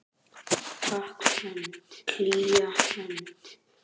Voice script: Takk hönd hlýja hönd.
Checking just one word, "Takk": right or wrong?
right